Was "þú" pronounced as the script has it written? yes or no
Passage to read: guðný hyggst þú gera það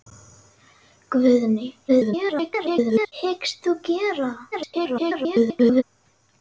yes